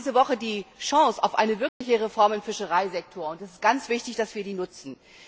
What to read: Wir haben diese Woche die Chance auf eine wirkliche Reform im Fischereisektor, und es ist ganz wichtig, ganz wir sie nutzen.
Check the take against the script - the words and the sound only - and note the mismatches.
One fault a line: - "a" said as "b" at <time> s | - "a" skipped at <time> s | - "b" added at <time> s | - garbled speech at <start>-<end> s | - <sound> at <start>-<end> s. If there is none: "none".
- dropout at 1.7-1.8 s
- "ganz" said as "dass" at 4.2 s